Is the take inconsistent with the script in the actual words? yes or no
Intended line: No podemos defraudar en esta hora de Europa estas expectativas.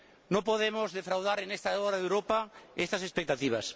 no